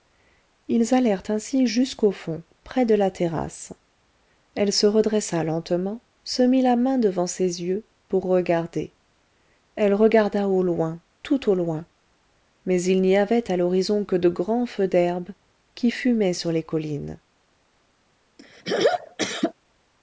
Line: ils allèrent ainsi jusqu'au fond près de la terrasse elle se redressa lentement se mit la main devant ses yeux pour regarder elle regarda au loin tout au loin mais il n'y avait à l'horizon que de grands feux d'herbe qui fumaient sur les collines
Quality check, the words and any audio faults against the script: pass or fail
fail